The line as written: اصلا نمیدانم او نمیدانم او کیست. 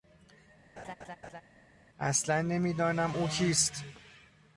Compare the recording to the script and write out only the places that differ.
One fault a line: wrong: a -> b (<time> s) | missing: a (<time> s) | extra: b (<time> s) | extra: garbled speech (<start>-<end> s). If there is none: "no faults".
missing: نمیدانم او (3.3 s)